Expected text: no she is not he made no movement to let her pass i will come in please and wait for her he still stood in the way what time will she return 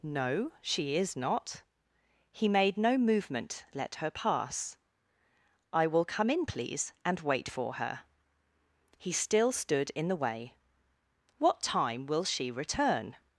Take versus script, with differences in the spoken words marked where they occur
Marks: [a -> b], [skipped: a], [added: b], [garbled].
no she is not he made no movement [skipped: to] let her pass i will come in please and wait for her he still stood in the way what time will she return